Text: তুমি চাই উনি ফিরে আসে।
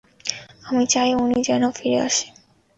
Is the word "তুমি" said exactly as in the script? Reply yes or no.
no